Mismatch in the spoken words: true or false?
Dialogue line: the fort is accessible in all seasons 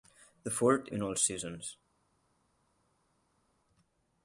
true